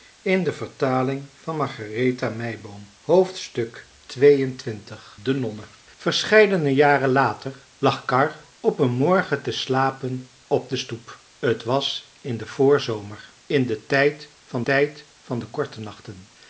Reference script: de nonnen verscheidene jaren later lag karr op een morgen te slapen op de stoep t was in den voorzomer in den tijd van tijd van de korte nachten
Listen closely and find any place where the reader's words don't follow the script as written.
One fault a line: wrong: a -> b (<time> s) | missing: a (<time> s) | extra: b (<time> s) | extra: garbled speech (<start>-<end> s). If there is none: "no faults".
no faults